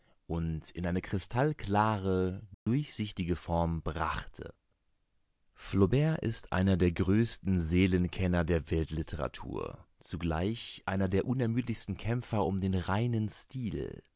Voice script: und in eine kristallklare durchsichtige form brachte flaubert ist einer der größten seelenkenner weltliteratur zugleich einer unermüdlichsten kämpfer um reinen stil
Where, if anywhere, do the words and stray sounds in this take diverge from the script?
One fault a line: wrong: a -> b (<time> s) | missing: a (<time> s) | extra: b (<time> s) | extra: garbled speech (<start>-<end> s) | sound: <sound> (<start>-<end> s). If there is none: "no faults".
sound: dropout (2.5-2.7 s)
extra: der (8.4 s)
extra: der (11.1 s)
extra: den (12.6 s)